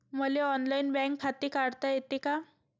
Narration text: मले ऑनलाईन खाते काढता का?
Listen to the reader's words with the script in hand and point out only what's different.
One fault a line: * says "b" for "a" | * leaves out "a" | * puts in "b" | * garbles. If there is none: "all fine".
* puts in "बँक"
* puts in "येते"